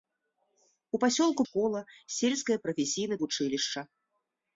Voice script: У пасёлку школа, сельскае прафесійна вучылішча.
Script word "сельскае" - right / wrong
right